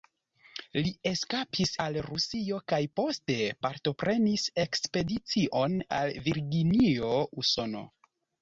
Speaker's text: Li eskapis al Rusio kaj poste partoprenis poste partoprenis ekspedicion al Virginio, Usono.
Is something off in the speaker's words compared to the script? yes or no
yes